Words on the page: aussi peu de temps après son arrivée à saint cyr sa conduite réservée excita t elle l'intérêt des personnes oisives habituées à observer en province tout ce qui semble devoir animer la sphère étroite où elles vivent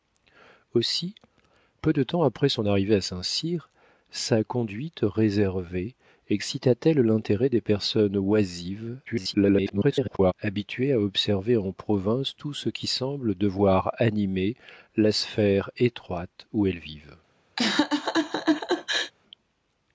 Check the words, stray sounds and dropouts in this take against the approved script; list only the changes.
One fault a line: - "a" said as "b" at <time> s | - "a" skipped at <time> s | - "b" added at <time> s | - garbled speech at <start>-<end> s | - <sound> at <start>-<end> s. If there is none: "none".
- garbled speech at 9.1-10.3 s
- laugh at 17.6-19.1 s